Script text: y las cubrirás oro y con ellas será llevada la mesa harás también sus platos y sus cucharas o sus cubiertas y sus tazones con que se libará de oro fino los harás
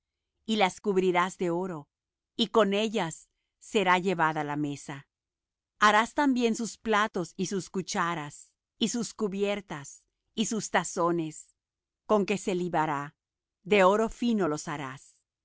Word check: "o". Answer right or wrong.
wrong